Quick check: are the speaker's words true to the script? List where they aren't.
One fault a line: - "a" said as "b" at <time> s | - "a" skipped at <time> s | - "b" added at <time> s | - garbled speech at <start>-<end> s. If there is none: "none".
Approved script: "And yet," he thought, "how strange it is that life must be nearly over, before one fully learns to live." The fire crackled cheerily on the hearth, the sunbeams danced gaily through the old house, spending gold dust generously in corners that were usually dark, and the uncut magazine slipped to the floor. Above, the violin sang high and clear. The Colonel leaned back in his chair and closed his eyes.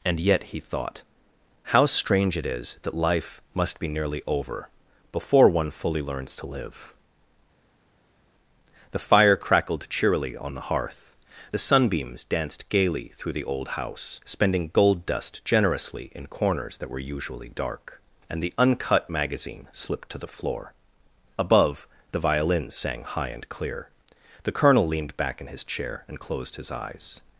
none